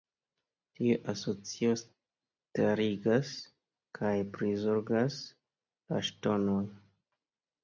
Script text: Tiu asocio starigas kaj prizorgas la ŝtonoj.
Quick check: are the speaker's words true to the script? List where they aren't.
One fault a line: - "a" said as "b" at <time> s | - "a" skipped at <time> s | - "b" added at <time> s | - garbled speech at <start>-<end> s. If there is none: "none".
none